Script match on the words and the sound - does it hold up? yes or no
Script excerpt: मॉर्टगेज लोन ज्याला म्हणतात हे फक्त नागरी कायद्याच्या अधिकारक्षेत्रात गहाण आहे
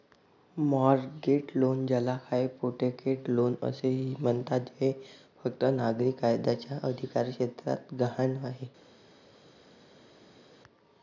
no